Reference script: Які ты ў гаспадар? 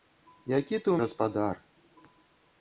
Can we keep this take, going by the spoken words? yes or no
yes